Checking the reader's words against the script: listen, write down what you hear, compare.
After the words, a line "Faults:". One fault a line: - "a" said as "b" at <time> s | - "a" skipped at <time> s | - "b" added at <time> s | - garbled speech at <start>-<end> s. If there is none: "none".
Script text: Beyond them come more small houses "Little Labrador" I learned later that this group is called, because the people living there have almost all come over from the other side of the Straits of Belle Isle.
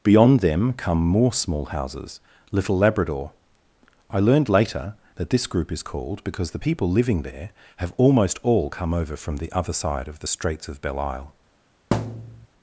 Beyond them come more small houses "Little Labrador" I learned later that this group is called, because the people living there have almost all come over from the other side of the Straits of Belle Isle.
Faults:
none